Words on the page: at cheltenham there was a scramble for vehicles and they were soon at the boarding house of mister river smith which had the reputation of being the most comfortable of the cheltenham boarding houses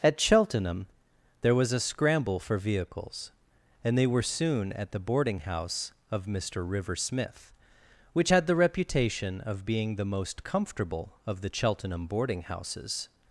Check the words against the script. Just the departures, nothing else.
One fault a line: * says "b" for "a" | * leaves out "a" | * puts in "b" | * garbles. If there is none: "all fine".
all fine